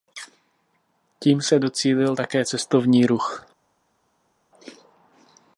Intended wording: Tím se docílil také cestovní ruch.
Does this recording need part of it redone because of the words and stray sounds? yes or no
no